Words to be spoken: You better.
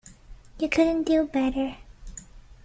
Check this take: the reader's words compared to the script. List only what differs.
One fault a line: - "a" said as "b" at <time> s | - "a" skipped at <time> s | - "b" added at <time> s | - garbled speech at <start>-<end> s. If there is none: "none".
- "couldn't do" added at 0.7 s